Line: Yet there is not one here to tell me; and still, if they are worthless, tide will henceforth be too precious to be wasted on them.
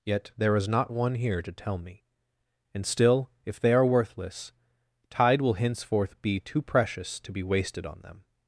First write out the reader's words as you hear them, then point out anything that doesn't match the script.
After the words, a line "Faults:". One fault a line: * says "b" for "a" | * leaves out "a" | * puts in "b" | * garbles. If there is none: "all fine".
Yet there is not one here to tell me; and still, if they are worthless, tide will henceforth be too precious to be wasted on them.
Faults:
all fine